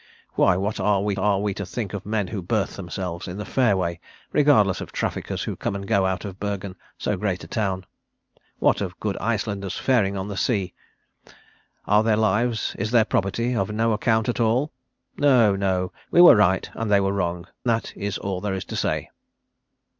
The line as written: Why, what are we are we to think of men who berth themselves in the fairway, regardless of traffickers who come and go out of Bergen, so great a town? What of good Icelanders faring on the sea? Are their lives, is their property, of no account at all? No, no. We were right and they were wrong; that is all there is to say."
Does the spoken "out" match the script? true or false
true